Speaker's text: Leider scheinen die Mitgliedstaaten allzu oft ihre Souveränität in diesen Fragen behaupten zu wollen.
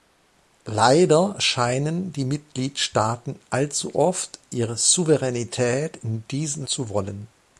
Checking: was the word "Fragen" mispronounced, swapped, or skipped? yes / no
yes